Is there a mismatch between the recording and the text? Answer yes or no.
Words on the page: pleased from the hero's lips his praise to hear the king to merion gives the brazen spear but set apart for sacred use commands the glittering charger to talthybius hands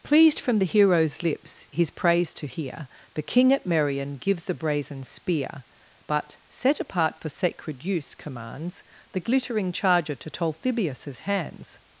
yes